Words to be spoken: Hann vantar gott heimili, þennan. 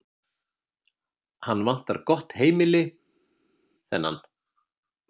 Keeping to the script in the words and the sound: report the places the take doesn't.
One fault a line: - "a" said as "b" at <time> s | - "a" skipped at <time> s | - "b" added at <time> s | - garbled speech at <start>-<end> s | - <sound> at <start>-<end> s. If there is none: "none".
none